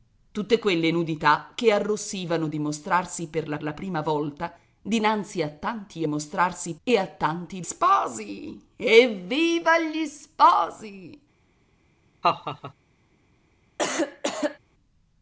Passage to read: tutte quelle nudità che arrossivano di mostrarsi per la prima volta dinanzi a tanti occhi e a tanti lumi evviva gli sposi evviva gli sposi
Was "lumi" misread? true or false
true